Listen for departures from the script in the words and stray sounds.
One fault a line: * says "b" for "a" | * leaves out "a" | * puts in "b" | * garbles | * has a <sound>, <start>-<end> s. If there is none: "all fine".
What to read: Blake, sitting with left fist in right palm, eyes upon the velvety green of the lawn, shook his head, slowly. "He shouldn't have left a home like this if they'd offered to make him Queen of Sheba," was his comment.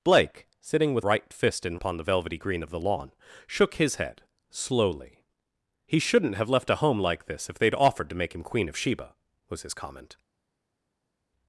* says "right" for "left"
* leaves out "right palm eyes"